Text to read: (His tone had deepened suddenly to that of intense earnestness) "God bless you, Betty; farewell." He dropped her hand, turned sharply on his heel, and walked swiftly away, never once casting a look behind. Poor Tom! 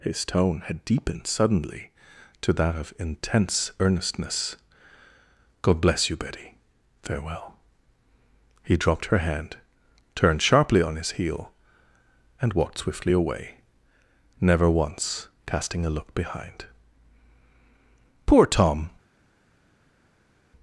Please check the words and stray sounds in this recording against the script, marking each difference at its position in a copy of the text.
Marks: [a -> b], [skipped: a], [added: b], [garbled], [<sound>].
(His tone had deepened suddenly to that of intense earnestness) "God bless you, Betty; farewell." He dropped her hand, turned sharply on his heel, and walked swiftly away, never once casting a look behind. Poor Tom!